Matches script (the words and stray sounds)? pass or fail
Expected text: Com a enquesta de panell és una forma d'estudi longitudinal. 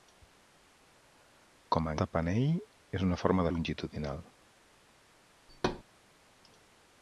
fail